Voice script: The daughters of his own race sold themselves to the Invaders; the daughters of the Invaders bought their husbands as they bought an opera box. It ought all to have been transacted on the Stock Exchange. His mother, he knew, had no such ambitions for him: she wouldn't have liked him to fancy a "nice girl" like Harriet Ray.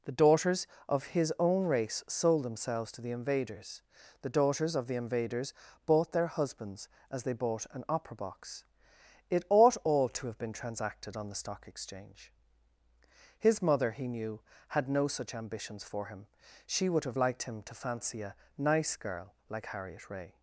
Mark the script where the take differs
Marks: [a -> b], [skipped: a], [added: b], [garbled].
The daughters of his own race sold themselves to the Invaders; the daughters of the Invaders bought their husbands as they bought an opera box. It ought all to have been transacted on the Stock Exchange. His mother, he knew, had no such ambitions for him: she [wouldn't -> would] have liked him to fancy a "nice girl" like Harriet Ray.